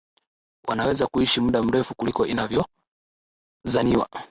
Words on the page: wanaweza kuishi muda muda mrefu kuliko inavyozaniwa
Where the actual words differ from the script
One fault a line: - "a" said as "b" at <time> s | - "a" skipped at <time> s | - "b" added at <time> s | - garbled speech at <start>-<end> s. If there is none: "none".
- "muda" skipped at 1.6 s